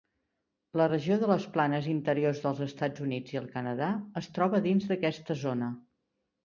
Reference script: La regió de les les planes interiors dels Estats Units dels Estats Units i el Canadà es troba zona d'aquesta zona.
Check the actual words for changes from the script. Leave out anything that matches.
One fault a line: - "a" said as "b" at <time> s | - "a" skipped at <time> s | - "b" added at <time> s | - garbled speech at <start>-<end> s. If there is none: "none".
- "les" skipped at 1.5 s
- "dels Estats Units" skipped at 3.4 s
- "zona" said as "dins" at 4.7 s